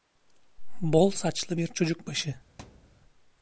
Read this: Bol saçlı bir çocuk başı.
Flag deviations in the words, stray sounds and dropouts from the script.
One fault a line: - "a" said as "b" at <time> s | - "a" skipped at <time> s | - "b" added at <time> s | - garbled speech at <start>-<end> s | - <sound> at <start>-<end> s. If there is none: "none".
- thud at 2.6-3.0 s